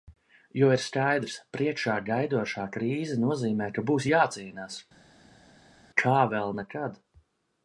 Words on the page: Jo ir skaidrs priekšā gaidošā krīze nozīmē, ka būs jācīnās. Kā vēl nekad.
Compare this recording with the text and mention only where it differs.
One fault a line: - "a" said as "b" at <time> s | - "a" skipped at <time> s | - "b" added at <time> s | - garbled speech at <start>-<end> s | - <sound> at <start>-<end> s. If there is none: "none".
none